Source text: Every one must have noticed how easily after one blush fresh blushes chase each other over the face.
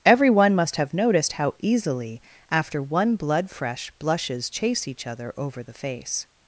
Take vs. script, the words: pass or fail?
fail